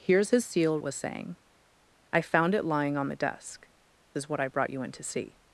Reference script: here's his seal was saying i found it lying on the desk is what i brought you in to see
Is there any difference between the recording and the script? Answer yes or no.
no